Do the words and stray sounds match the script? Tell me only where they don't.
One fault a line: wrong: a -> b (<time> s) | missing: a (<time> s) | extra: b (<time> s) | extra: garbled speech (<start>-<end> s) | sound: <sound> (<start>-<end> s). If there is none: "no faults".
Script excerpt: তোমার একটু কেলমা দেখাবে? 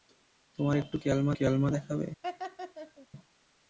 extra: কেলমা (1.4 s)
sound: laugh (2.2-3.1 s)